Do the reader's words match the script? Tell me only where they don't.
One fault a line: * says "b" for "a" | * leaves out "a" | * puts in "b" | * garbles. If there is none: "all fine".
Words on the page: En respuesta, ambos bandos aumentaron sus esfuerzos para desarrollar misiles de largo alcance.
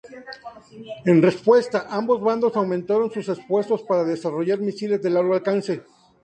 all fine